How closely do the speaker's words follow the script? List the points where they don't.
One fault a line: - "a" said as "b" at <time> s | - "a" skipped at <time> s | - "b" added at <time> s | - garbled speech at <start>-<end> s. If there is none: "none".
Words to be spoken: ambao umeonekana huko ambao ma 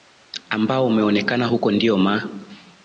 - "ambao" said as "ndio" at 1.7 s